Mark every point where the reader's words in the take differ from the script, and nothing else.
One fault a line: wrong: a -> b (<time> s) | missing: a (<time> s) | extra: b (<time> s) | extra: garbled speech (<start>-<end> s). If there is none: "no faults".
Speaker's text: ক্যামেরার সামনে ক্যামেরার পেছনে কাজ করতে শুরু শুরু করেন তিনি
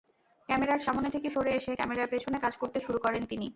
extra: থেকে সরে এসে (1.1 s)
missing: শুরু (3.0 s)